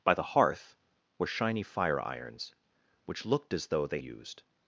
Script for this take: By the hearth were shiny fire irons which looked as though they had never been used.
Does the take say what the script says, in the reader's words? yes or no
no